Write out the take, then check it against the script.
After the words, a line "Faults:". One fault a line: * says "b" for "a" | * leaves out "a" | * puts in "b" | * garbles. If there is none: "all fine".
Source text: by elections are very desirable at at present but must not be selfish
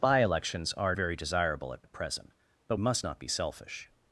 by elections are very desirable at at present but must not be selfish
Faults:
all fine